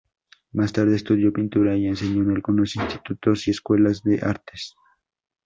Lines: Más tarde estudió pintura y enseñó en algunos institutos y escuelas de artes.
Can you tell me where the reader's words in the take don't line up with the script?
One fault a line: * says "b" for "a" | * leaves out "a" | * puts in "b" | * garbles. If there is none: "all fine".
all fine